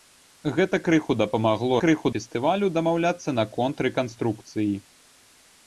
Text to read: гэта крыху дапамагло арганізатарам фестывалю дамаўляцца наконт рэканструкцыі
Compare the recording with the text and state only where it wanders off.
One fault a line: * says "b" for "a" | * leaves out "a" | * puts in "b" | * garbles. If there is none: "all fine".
* says "крыху" for "арганізатарам"